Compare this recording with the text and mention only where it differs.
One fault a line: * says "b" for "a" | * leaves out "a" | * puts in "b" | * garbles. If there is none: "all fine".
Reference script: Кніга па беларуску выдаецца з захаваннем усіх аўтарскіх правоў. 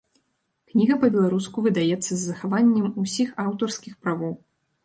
all fine